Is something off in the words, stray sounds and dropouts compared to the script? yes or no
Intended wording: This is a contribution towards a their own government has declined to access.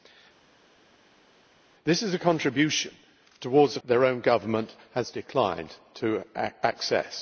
no